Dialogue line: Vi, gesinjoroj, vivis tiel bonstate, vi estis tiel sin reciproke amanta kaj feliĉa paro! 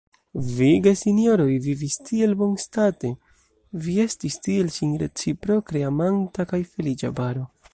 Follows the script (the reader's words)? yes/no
yes